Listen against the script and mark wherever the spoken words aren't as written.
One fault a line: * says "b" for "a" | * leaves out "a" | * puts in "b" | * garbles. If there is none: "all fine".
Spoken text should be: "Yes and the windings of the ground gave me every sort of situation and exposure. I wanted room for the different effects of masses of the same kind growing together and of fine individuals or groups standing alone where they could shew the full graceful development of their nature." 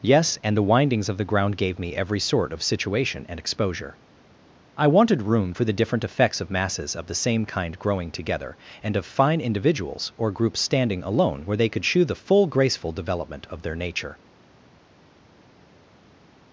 all fine